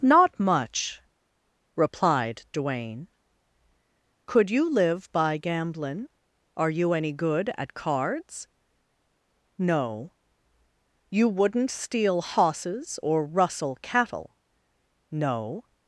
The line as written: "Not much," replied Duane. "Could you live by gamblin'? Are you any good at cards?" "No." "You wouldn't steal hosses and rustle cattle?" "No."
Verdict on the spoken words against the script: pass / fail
fail